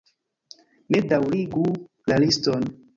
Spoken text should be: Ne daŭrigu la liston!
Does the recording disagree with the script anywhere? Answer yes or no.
no